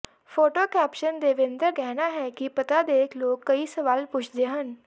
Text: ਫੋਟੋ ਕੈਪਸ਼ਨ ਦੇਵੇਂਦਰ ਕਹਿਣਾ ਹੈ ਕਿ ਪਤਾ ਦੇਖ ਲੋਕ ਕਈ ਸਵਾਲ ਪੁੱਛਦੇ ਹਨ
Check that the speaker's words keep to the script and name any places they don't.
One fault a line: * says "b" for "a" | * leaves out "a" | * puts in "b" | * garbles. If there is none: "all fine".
all fine